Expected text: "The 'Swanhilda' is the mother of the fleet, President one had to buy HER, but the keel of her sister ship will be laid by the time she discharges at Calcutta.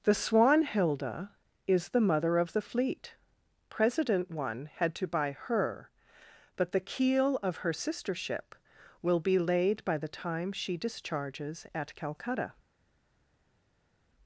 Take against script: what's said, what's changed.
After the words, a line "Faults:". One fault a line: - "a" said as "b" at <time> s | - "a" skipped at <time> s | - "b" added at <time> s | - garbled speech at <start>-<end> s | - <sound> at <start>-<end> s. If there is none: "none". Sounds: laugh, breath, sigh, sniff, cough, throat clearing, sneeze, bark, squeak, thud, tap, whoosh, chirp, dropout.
"The 'Swanhilda' is the mother of the fleet, President one had to buy HER, but the keel of her sister ship will be laid by the time she discharges at Calcutta.
Faults:
none